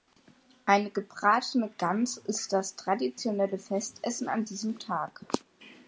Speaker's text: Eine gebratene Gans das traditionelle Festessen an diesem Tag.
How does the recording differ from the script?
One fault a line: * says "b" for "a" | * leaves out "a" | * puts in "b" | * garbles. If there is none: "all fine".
* puts in "ist"